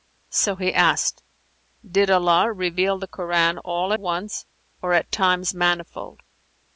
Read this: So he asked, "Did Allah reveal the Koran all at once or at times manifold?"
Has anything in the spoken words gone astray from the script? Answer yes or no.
yes